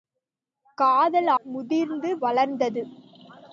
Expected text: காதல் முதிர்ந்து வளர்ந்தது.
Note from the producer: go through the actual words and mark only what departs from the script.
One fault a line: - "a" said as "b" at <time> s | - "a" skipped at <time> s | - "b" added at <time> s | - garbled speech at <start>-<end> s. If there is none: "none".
none